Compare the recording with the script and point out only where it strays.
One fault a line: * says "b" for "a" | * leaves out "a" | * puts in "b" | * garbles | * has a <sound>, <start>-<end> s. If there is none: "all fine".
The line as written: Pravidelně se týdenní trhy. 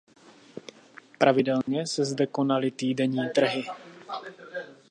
* has a dropout, 1.6-1.7 s
* puts in "zde konaly"